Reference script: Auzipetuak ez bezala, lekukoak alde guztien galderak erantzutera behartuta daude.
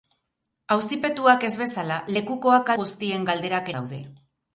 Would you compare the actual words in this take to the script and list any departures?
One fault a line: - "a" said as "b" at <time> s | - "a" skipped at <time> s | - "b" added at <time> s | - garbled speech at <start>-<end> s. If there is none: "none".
- "alde" skipped at 2.7 s
- "erantzutera behartuta" skipped at 3.7 s